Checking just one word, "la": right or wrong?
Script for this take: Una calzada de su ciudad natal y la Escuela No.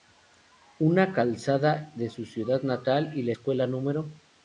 right